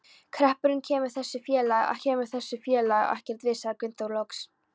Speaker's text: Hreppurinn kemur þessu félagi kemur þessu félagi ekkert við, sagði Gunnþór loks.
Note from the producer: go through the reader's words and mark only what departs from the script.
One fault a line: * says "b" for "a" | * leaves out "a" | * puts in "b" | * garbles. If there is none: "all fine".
all fine